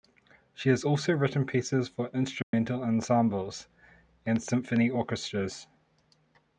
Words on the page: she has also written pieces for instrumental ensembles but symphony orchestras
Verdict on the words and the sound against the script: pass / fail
fail